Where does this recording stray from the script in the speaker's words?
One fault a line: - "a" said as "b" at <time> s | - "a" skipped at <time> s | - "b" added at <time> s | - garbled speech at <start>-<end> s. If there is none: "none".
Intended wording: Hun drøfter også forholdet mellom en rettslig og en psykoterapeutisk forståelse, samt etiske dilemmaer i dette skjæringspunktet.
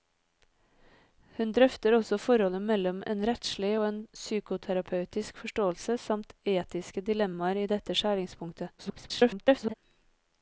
- garbled speech at 8.8-9.7 s